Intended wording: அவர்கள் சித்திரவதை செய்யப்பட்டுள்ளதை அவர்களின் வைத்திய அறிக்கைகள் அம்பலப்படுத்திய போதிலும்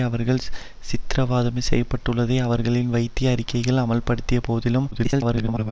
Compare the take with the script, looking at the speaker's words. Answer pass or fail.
fail